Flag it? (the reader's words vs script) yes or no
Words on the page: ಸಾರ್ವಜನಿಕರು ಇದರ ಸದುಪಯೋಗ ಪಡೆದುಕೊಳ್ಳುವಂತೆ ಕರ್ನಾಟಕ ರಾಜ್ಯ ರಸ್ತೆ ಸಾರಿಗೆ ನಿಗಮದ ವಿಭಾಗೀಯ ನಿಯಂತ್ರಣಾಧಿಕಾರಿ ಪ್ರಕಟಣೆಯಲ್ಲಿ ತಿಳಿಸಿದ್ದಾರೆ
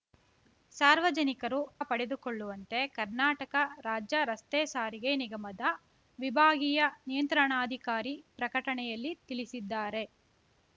yes